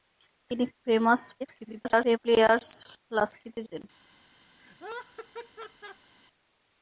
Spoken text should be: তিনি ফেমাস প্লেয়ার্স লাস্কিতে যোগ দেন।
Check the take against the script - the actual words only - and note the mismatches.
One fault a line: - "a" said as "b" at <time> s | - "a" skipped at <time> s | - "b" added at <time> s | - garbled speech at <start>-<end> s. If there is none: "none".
- garbled speech at 1.4-2.2 s
- "যোগ" skipped at 3.6 s